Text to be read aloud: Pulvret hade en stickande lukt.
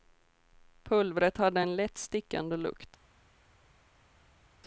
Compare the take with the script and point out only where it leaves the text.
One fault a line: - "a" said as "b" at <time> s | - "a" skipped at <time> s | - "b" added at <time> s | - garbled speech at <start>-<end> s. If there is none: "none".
- "lätt" added at 1.7 s